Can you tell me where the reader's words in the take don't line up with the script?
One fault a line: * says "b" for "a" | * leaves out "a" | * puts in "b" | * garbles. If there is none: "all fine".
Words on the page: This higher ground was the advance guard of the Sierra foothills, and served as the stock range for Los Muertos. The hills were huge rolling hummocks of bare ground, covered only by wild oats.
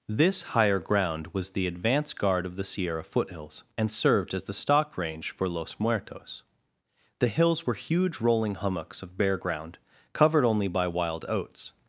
all fine